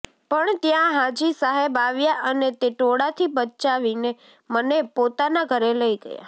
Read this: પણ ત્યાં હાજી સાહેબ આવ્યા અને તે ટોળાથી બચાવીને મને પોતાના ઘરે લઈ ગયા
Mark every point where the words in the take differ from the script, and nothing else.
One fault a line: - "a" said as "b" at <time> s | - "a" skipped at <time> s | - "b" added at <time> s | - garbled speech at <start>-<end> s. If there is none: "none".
none